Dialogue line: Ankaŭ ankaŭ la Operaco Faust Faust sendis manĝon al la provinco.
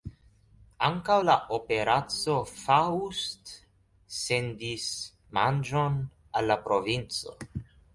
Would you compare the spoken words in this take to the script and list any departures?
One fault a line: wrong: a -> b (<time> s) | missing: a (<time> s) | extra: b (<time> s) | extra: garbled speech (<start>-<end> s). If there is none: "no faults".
missing: ankaŭ (1.2 s)
missing: Faust (3.5 s)